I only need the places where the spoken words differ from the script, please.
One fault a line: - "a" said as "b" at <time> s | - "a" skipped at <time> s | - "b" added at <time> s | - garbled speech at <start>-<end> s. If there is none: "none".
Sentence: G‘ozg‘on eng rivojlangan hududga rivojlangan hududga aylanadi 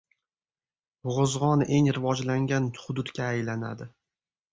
- "rivojlangan hududga" skipped at 3.3 s